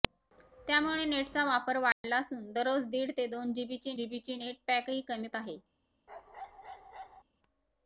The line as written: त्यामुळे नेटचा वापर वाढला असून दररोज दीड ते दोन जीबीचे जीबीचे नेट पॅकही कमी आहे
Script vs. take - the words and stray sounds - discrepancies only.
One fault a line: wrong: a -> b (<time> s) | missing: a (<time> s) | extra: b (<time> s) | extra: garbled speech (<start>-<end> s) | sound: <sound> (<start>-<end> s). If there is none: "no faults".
sound: dropout (1.9-2.0 s)
sound: bark (6.1-7.2 s)